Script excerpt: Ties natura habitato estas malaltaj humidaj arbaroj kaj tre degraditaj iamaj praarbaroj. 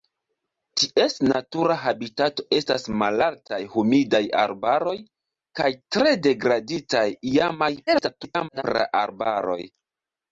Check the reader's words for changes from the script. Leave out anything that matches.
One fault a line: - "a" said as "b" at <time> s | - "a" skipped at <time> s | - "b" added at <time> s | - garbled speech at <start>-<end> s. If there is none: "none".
- garbled speech at 7.9-8.6 s